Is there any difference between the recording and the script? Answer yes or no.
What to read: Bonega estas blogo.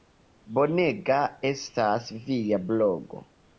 yes